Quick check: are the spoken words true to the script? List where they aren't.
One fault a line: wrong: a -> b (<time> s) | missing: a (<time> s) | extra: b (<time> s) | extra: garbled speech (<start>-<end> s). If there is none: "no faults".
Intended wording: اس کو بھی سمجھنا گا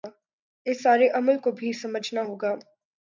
extra: سارے عمل (0.8 s)
extra: ہو (2.2 s)